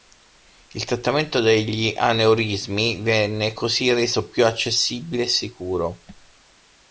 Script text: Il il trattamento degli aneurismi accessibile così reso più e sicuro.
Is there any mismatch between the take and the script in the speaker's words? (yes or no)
yes